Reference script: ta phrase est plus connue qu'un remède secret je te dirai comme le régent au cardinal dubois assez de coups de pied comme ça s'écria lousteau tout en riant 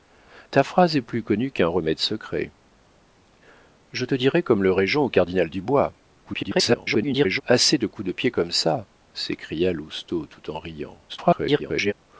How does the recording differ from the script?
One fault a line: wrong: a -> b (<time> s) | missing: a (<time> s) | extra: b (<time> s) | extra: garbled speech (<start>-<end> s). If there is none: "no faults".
extra: garbled speech (6.2-7.4 s)
extra: garbled speech (11.1-11.9 s)